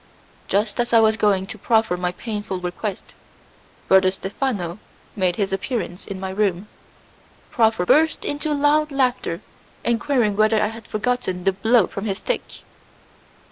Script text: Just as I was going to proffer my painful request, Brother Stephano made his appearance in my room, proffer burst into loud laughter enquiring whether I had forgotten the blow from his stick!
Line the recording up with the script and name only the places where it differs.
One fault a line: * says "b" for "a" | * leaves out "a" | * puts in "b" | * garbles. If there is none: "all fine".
all fine